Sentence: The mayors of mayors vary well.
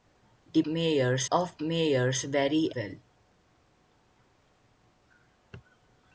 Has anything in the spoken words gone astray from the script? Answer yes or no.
no